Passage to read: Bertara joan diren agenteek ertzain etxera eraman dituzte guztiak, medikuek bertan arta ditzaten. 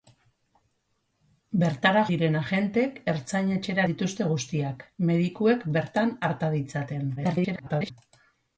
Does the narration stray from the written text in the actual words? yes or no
yes